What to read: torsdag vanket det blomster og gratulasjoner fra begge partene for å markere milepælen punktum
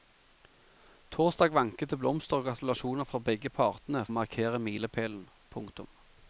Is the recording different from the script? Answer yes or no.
yes